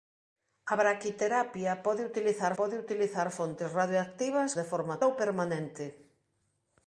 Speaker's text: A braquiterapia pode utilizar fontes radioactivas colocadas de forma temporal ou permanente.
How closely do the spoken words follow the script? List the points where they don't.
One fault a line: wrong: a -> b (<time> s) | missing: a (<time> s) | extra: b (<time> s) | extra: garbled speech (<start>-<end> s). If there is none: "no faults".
extra: pode utilizar (2.6 s)
missing: colocadas (4.5 s)
missing: temporal (5.0 s)